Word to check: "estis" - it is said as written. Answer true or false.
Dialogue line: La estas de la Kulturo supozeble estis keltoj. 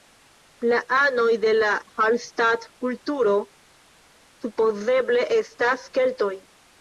false